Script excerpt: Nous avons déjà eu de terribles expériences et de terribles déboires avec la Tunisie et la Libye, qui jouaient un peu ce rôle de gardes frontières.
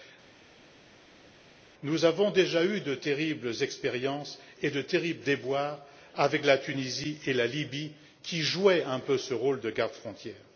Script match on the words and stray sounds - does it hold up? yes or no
yes